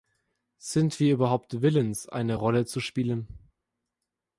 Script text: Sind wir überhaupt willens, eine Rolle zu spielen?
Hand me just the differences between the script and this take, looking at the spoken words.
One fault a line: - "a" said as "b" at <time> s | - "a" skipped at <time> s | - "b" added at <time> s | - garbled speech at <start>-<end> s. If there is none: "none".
none